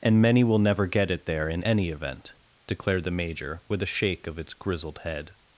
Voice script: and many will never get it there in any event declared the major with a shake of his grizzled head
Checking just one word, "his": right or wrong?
wrong